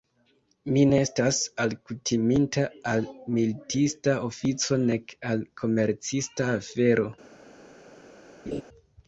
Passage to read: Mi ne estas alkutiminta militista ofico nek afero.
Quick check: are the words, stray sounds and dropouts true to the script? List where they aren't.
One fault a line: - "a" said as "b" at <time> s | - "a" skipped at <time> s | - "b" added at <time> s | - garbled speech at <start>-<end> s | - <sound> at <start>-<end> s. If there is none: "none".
- "al" added at 2.9 s
- "al komercista" added at 5.3 s
- laugh at 8.5-8.6 s